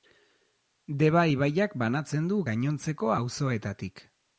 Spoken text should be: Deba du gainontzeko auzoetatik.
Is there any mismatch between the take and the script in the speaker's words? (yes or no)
yes